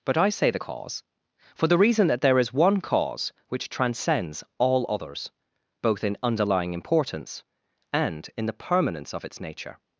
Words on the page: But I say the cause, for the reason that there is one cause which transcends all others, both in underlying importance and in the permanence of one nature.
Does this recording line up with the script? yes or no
no